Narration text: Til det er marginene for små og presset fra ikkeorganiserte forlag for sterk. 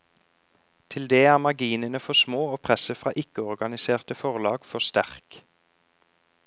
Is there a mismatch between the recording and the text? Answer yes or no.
no